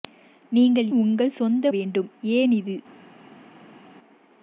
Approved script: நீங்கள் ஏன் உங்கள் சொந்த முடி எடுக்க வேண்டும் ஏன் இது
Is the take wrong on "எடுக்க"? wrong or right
wrong